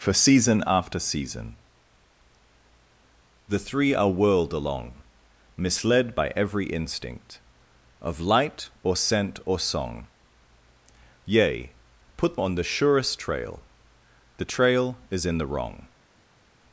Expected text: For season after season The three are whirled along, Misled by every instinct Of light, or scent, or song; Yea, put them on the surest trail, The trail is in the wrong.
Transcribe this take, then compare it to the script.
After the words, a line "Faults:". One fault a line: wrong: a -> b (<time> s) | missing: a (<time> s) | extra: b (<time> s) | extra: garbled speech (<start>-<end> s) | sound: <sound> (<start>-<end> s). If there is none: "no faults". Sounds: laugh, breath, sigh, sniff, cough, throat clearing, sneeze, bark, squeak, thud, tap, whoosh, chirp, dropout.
For season after season The three are whirled along, Misled by every instinct Of light, or scent, or song; Yea, put on the surest trail, The trail is in the wrong.
Faults:
missing: them (12.4 s)